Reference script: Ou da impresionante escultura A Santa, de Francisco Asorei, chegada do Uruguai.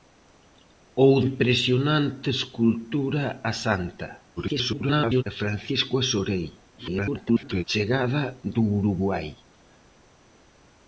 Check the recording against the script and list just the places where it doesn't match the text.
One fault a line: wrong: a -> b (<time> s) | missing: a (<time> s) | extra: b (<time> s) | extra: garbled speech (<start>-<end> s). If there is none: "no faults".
missing: da (1.1 s)
extra: garbled speech (4.4-5.2 s)
extra: garbled speech (6.8-7.6 s)